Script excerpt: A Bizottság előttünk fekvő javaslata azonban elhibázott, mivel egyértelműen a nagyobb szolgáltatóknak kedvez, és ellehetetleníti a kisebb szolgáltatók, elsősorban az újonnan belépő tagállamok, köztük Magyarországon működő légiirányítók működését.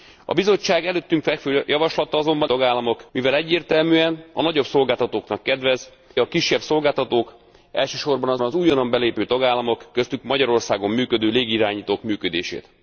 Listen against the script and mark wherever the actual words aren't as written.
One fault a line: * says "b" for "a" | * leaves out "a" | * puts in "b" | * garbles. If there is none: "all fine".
* says "tagállamok" for "elhibázott"
* leaves out "és ellehetetleníti"
* puts in "az"